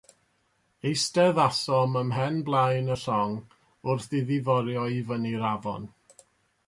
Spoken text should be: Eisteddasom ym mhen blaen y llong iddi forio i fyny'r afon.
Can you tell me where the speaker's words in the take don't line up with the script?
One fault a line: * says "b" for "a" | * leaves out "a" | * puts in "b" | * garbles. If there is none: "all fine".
* puts in "wrth"